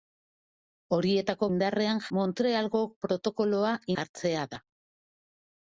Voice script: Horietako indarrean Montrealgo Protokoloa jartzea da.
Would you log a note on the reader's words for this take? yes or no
no